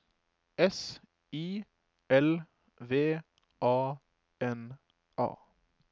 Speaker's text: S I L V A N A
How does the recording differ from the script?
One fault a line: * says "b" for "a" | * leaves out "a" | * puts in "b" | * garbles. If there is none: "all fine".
all fine